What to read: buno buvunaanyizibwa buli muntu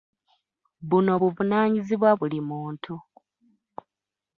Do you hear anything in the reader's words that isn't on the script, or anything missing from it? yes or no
no